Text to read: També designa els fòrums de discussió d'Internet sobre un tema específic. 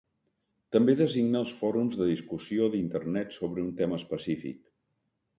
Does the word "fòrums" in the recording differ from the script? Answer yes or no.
no